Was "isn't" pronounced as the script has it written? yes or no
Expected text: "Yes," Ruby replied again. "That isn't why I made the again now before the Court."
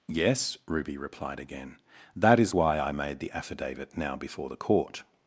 no